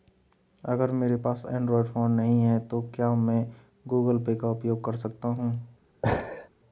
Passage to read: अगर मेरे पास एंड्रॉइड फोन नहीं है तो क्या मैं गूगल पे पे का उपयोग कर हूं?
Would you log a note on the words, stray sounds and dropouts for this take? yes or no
yes